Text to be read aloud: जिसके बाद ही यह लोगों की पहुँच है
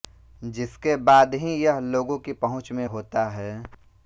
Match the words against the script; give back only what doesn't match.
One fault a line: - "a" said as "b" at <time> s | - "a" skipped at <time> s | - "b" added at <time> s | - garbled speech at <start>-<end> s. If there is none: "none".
- "में होता" added at 2.7 s